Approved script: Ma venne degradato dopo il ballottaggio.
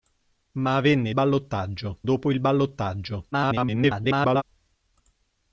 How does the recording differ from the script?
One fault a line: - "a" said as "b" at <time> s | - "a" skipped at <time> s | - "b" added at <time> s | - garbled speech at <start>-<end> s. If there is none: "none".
- "degradato" said as "ballottaggio" at 1.1 s
- garbled speech at 3.3-4.4 s